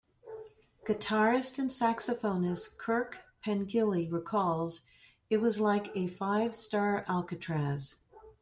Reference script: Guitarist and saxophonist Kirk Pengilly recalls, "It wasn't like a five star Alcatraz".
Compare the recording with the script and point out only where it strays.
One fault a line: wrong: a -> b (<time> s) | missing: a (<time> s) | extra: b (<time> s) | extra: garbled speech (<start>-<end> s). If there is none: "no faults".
wrong: wasn't -> was (5.4 s)